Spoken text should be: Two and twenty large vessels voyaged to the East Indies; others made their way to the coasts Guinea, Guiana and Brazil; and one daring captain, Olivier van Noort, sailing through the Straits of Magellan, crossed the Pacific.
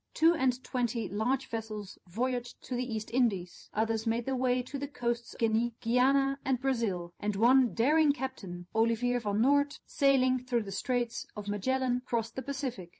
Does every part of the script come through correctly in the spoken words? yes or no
yes